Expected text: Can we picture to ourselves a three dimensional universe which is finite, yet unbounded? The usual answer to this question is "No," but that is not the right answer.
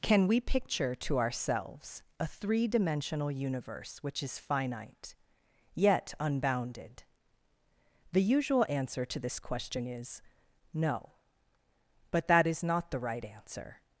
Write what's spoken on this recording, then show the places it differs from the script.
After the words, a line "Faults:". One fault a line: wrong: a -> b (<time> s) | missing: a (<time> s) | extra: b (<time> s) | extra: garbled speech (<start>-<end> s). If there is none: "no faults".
Can we picture to ourselves a three dimensional universe which is finite, yet unbounded? The usual answer to this question is "No," but that is not the right answer.
Faults:
no faults